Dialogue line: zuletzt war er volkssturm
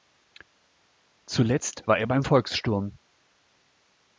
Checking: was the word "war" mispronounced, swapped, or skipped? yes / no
no